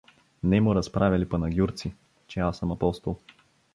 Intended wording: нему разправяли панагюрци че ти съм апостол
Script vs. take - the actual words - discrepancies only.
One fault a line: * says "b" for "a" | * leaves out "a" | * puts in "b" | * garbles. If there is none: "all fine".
* says "аз" for "ти"